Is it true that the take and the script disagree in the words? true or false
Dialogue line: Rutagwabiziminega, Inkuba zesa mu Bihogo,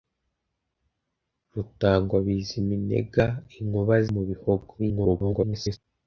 true